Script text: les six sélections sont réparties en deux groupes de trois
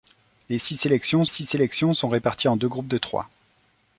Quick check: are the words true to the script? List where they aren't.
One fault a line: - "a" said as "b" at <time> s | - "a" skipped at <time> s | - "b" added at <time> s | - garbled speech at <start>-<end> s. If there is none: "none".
- "six sélections" added at 1.3 s